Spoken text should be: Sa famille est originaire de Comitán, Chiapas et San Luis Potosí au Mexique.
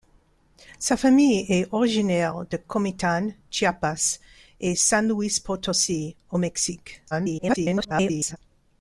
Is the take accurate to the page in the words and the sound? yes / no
no